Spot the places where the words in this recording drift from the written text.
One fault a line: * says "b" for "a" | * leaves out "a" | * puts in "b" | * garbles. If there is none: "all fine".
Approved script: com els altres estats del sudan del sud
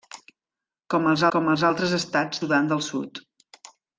* puts in "com els"
* leaves out "del"